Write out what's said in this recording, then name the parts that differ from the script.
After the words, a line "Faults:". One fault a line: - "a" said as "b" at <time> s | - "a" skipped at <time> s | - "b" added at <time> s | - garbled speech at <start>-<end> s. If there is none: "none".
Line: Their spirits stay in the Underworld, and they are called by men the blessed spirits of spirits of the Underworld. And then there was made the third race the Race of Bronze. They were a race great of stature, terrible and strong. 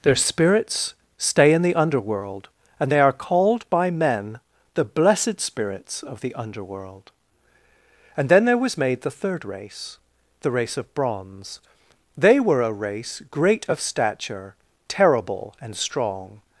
Their spirits stay in the Underworld, and they are called by men the blessed spirits of the Underworld. And then there was made the third race the Race of Bronze. They were a race great of stature, terrible and strong.
Faults:
- "spirits of" skipped at 6.2 s